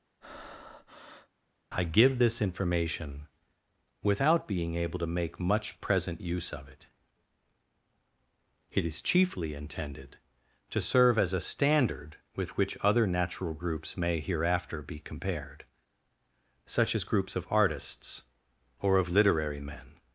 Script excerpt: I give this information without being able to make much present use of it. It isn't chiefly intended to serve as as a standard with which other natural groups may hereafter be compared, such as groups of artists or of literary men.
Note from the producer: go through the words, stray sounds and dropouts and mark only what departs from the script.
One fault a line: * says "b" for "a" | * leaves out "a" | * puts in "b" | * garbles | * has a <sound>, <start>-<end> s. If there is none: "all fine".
* has a breath, 0.2-1.3 s
* says "is" for "isn't"
* leaves out "as"